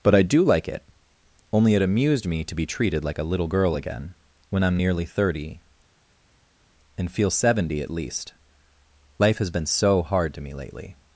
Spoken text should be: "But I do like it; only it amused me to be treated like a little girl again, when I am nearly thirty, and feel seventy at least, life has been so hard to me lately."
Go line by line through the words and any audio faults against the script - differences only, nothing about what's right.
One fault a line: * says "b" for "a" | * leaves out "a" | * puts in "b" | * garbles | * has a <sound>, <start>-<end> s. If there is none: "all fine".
all fine